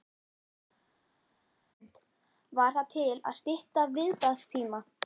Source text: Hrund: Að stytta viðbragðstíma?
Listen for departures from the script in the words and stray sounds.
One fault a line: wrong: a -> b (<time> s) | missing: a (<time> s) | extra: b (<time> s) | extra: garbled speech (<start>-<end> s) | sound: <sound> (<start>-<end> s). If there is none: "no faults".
extra: Var það til (2.6 s)